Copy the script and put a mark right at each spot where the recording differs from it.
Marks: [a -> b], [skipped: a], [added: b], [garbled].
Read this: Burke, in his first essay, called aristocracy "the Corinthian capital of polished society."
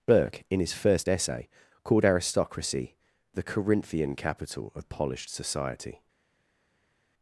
Burke, in his first essay, called aristocracy "the Corinthian capital of polished society."